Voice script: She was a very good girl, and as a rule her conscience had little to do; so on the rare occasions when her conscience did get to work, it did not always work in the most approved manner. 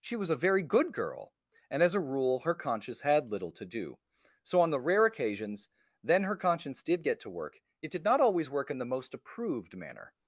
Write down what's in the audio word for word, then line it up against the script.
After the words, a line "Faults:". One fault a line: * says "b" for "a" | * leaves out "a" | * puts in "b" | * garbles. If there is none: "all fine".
She was a very good girl, and as a rule her conscience had little to do; so on the rare occasions then her conscience did get to work, it did not always work in the most approved manner.
Faults:
* says "then" for "when"